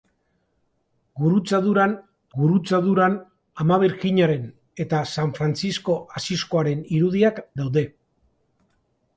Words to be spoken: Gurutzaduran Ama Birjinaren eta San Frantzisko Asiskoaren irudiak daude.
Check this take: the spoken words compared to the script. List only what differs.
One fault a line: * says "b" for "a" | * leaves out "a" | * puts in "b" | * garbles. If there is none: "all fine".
* puts in "gurutzaduran"